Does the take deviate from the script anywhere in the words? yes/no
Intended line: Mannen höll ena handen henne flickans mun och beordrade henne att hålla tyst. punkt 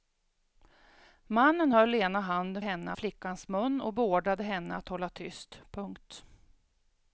no